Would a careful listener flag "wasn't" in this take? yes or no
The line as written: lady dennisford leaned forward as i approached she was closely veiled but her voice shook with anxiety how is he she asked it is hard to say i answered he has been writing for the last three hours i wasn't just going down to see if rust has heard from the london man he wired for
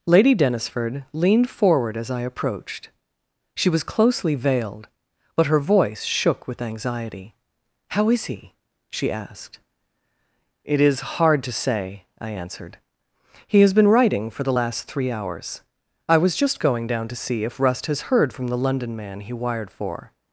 yes